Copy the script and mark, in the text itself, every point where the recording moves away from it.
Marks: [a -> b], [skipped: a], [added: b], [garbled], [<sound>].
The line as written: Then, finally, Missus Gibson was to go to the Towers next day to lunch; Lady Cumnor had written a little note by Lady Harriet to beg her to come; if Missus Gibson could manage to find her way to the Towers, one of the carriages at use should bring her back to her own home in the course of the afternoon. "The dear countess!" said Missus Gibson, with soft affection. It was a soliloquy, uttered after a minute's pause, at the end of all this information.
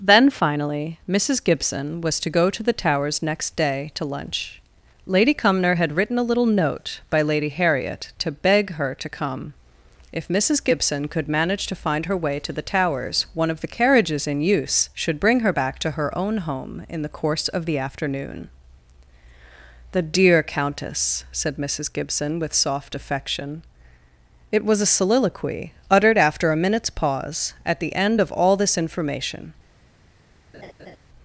Then, finally, Missus Gibson was to go to the Towers next day to lunch; Lady Cumnor had written a little note by Lady Harriet to beg her to come; if Missus Gibson could manage to find her way to the Towers, one of the carriages [at -> in] use should bring her back to her own home in the course of the afternoon. "The dear countess!" said Missus Gibson, with soft affection. It was a soliloquy, uttered after a minute's pause, at the end of all this information. [laugh]